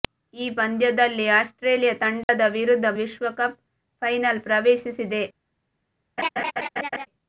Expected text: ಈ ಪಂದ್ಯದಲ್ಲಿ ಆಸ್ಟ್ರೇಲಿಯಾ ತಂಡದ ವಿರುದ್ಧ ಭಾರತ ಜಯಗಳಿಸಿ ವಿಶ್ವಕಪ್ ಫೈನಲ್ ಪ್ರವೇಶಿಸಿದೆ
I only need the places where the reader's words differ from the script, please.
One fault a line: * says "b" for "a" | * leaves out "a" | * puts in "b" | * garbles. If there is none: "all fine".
* leaves out "ಭಾರತ ಜಯಗಳಿಸಿ"